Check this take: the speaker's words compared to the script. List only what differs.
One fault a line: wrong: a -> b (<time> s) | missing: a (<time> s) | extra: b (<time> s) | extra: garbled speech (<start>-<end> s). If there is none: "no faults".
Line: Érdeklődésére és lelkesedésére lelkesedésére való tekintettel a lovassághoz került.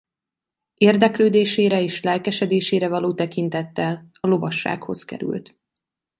missing: lelkesedésére (2.9 s)